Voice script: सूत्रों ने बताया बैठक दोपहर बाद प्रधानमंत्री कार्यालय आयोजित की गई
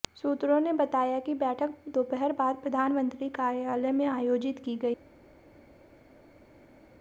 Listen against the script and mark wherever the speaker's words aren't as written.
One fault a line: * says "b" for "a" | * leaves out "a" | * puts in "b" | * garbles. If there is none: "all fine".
* puts in "कि"
* puts in "में"